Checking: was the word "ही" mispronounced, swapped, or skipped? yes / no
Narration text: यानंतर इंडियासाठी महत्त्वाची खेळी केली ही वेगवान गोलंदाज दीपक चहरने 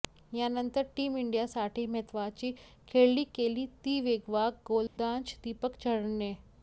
yes